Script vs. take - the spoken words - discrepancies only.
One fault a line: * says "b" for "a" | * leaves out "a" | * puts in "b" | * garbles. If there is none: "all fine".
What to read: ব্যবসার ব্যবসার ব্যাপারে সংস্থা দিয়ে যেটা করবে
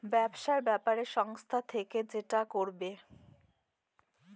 * leaves out "ব্যবসার"
* says "থেকে" for "দিয়ে"